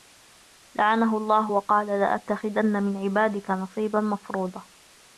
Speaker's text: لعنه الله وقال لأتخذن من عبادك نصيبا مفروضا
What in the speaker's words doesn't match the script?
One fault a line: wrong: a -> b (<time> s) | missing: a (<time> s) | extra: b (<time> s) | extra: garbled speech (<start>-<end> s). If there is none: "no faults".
no faults